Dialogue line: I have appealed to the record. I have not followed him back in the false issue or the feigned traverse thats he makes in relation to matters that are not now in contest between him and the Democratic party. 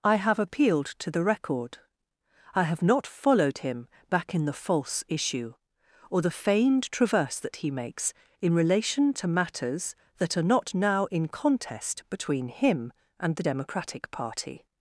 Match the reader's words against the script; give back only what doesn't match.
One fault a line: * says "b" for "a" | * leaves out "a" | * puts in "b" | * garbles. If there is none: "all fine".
* says "that" for "thats"